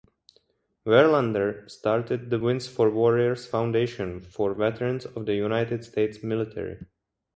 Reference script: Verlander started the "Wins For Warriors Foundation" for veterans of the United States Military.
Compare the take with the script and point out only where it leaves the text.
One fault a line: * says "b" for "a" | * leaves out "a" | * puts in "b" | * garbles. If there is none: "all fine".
all fine